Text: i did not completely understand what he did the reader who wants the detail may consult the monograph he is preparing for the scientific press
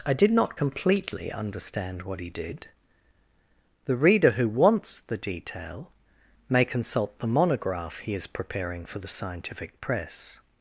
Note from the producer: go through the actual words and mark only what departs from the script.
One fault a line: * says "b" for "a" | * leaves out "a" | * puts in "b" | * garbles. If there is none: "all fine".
all fine